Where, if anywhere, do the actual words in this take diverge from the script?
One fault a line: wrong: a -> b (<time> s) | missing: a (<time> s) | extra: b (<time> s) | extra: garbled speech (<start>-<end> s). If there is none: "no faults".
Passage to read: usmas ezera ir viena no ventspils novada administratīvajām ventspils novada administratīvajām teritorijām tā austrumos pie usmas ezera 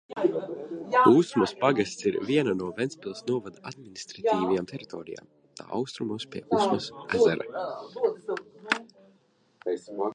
wrong: ezera -> pagasts (1.6 s)
missing: ventspils novada administratīvajām (4.7 s)